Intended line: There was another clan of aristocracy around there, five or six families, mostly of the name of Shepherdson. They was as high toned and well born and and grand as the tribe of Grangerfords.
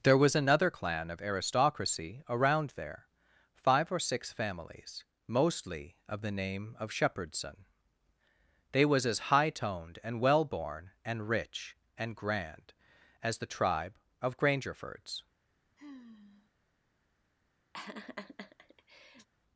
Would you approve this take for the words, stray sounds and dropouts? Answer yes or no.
no